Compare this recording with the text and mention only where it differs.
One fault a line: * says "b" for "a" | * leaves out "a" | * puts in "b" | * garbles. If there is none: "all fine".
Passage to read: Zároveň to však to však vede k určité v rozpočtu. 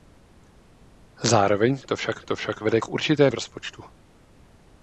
all fine